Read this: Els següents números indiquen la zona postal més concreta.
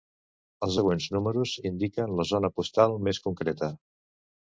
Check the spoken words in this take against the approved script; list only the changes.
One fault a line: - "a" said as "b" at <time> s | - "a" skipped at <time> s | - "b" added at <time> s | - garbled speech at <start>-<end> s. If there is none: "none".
none